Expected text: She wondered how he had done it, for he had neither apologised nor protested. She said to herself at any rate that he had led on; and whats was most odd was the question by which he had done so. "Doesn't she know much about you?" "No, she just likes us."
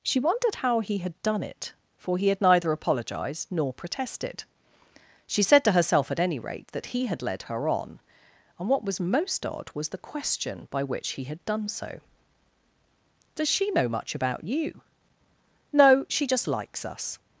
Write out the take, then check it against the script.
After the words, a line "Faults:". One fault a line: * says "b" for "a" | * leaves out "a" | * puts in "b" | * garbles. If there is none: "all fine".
She wondered how he had done it, for he had neither apologised nor protested. She said to herself at any rate that he had led her on; and what was most odd was the question by which he had done so. "Does she know much about you?" "No, she just likes us."
Faults:
* puts in "her"
* says "what" for "whats"
* says "Does" for "Doesn't"